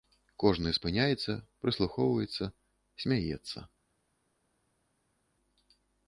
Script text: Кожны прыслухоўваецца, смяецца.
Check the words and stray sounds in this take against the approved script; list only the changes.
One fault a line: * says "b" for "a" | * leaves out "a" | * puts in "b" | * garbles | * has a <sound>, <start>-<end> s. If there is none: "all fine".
* puts in "спыняецца"